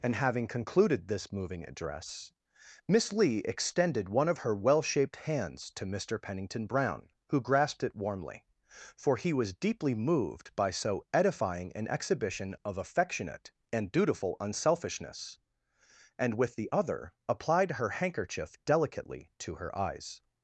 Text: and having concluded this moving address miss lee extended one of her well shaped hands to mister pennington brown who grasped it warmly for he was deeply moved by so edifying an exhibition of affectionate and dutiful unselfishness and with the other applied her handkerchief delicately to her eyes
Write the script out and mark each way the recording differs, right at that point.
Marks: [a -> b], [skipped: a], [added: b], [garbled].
and having concluded this moving address miss lee extended one of her well shaped hands to mister pennington brown who grasped it warmly for he was deeply moved by so edifying an exhibition of affectionate and dutiful unselfishness and with the other applied her handkerchief delicately to her eyes